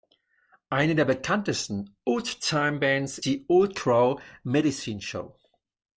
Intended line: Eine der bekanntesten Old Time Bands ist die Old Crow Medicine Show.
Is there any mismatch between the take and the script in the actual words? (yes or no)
yes